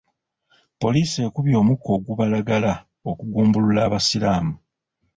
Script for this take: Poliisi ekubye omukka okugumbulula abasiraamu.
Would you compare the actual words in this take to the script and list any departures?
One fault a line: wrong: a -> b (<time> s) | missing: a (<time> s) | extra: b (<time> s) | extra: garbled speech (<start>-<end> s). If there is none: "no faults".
extra: ogubalagala (1.9 s)